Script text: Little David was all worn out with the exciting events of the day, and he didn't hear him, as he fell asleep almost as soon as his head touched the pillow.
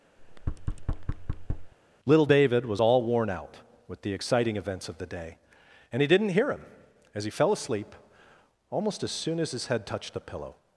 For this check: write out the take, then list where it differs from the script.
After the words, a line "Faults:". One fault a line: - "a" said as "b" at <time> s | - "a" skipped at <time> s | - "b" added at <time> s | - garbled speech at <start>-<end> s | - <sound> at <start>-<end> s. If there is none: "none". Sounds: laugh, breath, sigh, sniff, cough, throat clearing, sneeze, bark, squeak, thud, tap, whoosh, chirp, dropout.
Little David was all worn out with the exciting events of the day, and he didn't hear him, as he fell asleep almost as soon as his head touched the pillow.
Faults:
- thud at 0.2-1.7 s